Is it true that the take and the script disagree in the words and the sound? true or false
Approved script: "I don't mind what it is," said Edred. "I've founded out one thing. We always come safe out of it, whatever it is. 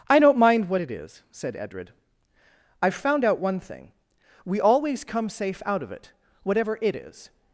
true